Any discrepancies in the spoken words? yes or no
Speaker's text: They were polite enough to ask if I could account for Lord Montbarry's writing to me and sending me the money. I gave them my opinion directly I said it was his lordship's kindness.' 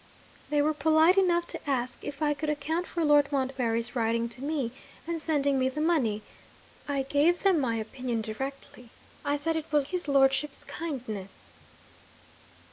no